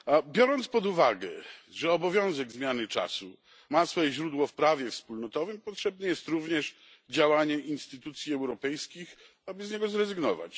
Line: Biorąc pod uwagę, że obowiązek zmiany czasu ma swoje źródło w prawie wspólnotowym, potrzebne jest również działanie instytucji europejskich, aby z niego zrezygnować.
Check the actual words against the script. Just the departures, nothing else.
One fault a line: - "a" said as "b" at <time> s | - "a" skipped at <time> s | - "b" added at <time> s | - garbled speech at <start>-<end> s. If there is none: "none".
none